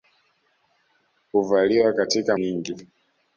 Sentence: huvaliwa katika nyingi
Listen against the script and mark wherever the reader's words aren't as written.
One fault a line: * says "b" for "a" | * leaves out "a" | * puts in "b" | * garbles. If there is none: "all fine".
all fine